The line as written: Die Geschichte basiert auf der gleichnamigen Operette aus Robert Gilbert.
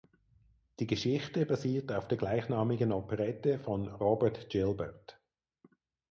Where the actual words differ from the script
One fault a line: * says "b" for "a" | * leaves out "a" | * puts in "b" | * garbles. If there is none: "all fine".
* says "von" for "aus"